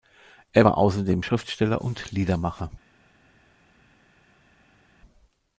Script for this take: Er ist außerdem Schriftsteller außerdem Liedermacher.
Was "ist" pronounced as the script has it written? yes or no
no